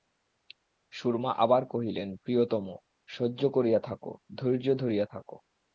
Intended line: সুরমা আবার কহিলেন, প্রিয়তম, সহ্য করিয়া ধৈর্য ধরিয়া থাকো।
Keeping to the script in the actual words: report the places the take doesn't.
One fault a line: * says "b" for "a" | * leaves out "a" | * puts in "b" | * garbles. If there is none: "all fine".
* puts in "থাকো"